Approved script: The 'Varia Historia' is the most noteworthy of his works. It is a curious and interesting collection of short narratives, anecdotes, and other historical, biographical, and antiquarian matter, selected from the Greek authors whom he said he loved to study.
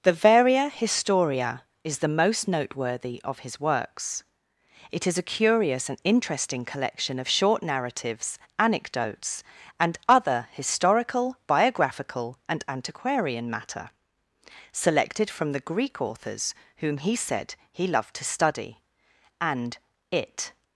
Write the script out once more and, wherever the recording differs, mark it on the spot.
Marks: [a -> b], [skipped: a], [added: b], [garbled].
The 'Varia Historia' is the most noteworthy of his works. It is a curious and interesting collection of short narratives, anecdotes, and other historical, biographical, and antiquarian matter, selected from the Greek authors whom he said he loved to study. [added: And it]